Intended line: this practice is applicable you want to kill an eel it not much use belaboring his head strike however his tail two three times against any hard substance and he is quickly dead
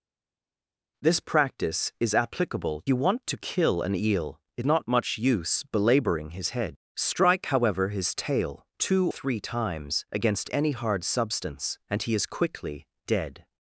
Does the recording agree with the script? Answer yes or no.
yes